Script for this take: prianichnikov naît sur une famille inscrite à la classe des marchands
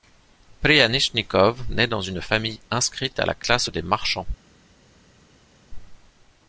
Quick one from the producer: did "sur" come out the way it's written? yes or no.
no